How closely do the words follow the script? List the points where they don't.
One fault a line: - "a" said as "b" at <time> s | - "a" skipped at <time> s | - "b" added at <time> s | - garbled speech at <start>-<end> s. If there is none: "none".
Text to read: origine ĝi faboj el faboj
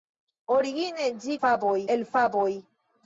none